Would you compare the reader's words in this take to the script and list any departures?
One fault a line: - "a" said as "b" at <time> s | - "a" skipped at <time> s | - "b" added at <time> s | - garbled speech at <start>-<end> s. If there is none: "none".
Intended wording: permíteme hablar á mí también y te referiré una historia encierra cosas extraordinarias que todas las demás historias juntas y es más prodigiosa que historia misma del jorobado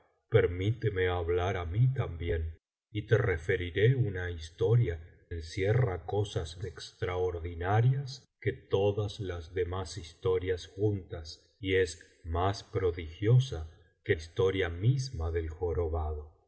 none